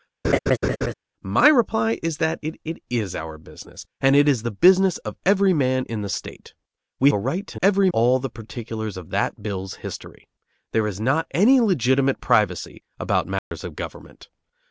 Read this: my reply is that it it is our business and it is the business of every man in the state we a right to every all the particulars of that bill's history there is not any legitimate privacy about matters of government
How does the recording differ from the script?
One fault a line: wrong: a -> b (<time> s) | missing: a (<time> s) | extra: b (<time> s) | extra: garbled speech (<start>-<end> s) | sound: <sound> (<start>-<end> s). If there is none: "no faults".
sound: laugh (0.2-0.9 s)
sound: dropout (13.4-13.5 s)